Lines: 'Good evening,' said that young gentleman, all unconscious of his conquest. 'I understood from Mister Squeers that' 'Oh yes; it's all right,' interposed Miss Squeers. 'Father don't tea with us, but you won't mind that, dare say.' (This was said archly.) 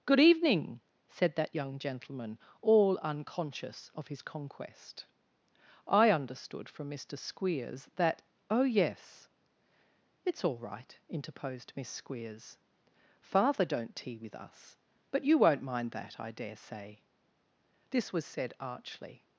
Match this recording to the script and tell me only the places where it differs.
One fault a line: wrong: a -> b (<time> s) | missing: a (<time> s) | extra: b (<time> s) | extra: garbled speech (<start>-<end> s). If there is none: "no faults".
extra: I (16.2 s)